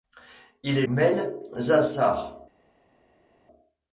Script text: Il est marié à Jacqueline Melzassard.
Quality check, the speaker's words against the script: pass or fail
fail